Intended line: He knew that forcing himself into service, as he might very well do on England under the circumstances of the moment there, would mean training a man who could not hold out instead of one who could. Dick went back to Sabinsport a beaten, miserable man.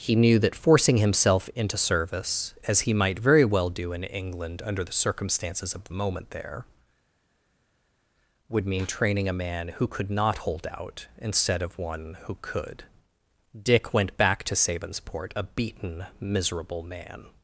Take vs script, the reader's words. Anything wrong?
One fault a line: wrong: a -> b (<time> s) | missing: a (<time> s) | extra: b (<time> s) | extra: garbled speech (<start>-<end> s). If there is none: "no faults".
wrong: on -> in (3.9 s)